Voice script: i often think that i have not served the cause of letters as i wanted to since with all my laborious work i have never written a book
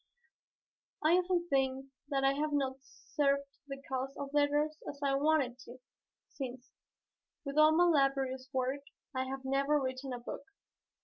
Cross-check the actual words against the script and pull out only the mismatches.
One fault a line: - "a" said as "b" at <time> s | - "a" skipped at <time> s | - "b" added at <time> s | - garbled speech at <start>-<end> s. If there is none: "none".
none